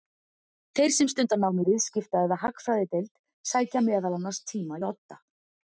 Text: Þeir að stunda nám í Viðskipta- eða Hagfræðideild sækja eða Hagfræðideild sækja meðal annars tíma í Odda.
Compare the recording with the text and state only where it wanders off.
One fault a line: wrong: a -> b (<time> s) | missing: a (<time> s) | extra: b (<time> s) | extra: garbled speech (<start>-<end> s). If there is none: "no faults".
wrong: að -> sem (0.9 s)
missing: eða Hagfræðideild sækja (3.8 s)